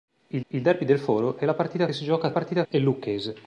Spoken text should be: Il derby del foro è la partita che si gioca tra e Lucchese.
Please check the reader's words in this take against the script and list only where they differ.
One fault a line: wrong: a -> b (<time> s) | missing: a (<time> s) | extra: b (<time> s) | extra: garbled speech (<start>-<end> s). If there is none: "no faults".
extra: il (0.5 s)
missing: che (1.9 s)
wrong: tra -> partita (2.3 s)